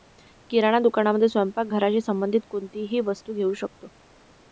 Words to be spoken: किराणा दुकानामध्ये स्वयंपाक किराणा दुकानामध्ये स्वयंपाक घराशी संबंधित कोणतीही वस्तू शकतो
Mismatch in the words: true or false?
true